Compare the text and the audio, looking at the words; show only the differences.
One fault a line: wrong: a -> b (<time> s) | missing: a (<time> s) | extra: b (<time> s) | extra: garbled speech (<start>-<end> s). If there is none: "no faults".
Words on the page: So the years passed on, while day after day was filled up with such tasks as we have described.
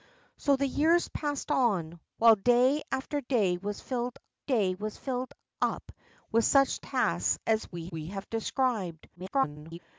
extra: day was filled (4.4 s)
extra: we (7.9 s)
extra: garbled speech (9.1-9.8 s)